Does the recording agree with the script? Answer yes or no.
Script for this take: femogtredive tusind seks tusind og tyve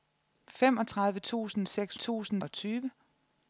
yes